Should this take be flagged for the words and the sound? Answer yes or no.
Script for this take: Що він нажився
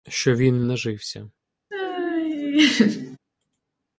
yes